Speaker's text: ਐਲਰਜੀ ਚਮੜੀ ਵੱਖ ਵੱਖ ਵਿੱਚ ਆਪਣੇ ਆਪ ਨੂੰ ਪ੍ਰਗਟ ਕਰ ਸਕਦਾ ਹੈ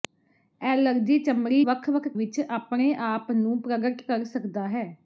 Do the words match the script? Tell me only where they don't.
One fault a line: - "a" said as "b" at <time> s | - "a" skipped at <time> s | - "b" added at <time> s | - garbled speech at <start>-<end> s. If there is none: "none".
none